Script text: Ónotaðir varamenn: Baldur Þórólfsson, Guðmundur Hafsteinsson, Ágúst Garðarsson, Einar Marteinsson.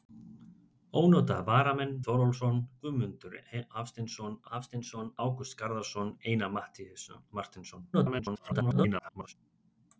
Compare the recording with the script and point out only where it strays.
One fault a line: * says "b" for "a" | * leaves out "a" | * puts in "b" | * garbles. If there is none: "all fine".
* leaves out "Baldur"
* puts in "Hafsteinsson"
* garbles